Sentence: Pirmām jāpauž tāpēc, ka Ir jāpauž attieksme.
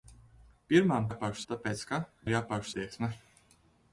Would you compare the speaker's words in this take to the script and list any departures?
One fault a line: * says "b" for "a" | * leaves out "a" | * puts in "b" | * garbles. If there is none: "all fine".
all fine